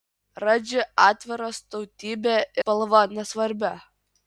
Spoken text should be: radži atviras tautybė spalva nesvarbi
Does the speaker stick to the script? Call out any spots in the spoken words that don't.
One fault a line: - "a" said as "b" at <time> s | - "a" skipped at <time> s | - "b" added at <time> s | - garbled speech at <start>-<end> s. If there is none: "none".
none